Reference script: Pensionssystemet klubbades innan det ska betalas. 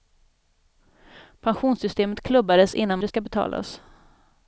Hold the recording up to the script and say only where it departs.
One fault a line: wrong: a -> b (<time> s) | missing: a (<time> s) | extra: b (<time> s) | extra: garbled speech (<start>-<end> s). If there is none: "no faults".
no faults